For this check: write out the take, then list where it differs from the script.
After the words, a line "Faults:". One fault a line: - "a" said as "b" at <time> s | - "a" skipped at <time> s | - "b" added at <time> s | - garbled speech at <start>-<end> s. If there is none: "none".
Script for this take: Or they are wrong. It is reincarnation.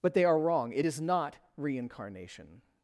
But they are wrong. It is not reincarnation.
Faults:
- "Or" said as "But" at 0.0 s
- "not" added at 1.0 s